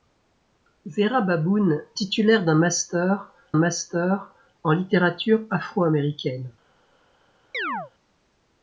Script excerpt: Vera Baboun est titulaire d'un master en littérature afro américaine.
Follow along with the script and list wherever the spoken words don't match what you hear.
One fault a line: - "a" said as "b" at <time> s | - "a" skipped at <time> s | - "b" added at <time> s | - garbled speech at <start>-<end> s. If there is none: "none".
- "est" skipped at 1.8 s
- "master" added at 3.5 s